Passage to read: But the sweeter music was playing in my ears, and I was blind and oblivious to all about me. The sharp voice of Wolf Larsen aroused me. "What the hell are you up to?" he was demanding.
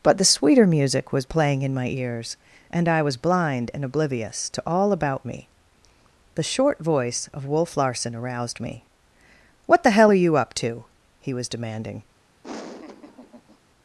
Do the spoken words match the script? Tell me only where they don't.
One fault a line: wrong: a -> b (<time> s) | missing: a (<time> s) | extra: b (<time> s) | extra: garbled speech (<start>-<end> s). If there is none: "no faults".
wrong: sharp -> short (6.4 s)